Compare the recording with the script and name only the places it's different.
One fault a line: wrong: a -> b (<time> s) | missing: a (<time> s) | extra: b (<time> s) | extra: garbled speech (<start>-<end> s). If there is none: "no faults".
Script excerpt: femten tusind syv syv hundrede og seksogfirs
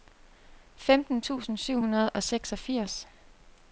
missing: syv (1.8 s)